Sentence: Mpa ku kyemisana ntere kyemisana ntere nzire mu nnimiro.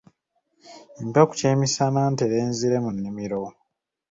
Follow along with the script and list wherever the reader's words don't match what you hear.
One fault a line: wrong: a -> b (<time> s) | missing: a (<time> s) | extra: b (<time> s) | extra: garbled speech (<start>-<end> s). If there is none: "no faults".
missing: kyemisana ntere (2.4 s)